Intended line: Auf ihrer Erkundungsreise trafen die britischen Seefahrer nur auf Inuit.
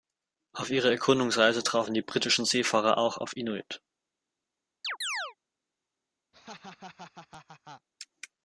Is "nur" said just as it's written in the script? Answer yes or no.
no